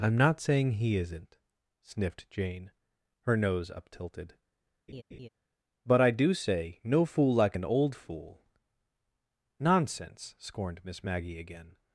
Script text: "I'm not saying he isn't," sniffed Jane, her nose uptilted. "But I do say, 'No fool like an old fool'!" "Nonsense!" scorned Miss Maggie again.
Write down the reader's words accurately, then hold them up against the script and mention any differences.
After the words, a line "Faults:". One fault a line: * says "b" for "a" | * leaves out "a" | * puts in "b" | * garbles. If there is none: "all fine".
"I'm not saying he isn't," sniffed Jane, her nose uptilted. "But I do say, 'No fool like an old fool'!" "Nonsense!" scorned Miss Maggie again.
Faults:
all fine